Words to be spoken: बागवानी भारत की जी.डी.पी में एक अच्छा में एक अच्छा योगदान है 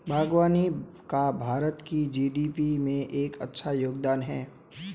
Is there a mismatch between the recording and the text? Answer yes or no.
yes